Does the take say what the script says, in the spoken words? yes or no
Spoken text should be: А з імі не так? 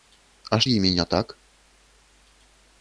yes